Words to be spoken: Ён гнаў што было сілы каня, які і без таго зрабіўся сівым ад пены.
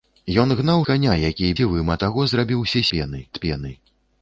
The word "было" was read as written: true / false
false